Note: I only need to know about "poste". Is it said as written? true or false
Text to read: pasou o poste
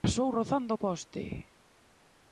true